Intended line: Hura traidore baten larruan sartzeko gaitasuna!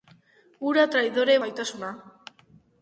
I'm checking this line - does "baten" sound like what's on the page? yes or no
no